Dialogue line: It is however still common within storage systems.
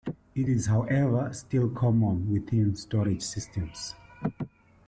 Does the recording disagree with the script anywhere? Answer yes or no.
no